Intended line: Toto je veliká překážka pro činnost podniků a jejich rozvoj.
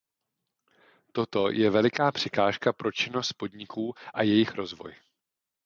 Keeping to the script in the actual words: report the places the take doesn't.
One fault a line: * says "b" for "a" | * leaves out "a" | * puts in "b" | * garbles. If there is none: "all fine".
all fine